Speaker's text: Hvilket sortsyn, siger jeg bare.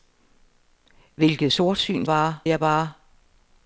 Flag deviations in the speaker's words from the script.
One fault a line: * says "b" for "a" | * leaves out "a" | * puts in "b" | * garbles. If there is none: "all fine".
* says "bare" for "siger"